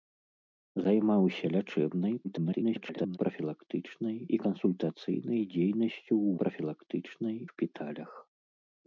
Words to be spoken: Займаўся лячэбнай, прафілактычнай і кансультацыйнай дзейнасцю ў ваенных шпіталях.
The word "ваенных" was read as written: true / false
false